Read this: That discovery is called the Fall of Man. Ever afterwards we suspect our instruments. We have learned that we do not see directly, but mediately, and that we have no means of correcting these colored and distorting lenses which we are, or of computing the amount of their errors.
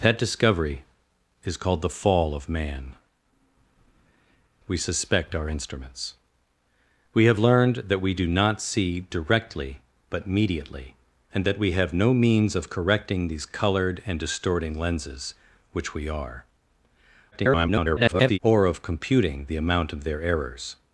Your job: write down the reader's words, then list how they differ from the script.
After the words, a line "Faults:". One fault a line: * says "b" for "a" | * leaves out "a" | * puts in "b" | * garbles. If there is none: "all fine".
That discovery is called the Fall of Man. We suspect our instruments. We have learned that we do not see directly, but mediately, and that we have no means of correcting these colored and distorting lenses which we are, [garbled] or of computing the amount of their errors.
Faults:
* leaves out "Ever afterwards"
* garbles